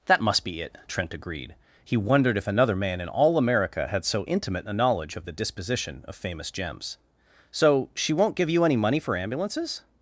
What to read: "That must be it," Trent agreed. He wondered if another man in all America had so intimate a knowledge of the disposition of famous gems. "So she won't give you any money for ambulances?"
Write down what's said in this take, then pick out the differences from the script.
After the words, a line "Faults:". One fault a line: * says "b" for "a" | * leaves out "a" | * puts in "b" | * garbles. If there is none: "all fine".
"That must be it," Trent agreed. He wondered if another man in all America had so intimate a knowledge of the disposition of famous gems. "So she won't give you any money for ambulances?"
Faults:
all fine